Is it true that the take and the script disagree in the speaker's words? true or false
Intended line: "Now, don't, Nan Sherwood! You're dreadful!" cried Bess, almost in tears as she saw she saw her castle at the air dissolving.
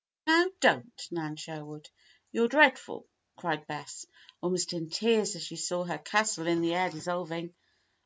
true